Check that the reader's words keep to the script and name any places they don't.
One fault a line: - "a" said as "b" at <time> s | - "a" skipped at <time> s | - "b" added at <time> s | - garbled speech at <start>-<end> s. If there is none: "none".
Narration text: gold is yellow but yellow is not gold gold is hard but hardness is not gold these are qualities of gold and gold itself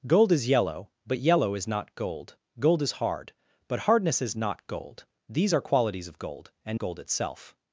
none